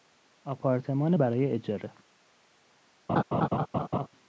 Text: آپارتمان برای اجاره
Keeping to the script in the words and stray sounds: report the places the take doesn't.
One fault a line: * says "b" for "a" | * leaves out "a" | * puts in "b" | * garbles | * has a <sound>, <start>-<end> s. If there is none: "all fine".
* has a laugh, 3.1-4.1 s